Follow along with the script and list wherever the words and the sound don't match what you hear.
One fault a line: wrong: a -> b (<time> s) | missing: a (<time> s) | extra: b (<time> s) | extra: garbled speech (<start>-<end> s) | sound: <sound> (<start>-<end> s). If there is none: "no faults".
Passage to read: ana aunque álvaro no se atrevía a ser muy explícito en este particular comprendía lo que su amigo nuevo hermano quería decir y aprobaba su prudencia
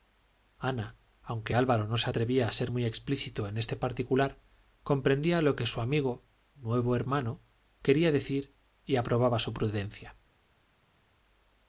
no faults